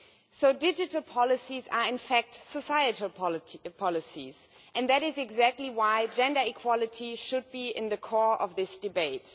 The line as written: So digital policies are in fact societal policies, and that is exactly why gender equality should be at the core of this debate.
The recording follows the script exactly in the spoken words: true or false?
true